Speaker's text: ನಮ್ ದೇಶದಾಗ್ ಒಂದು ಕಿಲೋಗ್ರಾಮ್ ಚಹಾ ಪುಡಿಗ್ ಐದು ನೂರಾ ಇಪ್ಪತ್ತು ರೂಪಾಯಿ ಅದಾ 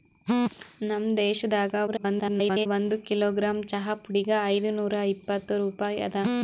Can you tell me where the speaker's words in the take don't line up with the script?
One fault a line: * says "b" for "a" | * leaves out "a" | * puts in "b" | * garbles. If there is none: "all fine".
* garbles